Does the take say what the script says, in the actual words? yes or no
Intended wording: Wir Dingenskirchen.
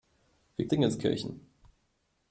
yes